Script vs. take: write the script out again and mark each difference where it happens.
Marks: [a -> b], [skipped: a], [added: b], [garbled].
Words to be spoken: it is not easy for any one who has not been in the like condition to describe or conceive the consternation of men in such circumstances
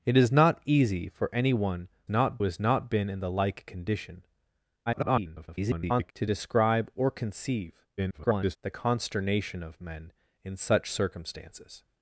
it is not easy for any one [who -> not] has not been in the like condition [garbled] to describe or conceive [garbled] the consternation of men in such circumstances